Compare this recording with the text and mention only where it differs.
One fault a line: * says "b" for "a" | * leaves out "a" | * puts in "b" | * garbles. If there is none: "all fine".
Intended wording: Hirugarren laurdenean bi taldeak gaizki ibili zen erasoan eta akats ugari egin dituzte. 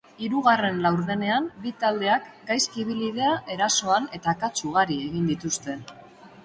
* says "dira" for "zen"